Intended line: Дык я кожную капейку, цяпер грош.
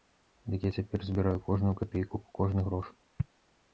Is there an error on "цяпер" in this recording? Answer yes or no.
yes